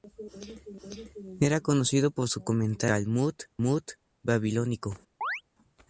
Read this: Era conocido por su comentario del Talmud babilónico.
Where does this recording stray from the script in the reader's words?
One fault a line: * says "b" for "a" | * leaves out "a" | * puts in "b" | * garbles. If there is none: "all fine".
all fine